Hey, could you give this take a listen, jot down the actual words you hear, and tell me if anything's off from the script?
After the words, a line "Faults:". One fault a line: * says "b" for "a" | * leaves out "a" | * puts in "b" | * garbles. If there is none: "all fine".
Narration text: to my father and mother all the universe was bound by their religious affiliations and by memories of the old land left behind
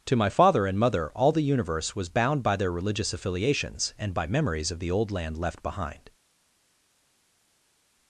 to my father and mother all the universe was bound by their religious affiliations and by memories of the old land left behind
Faults:
all fine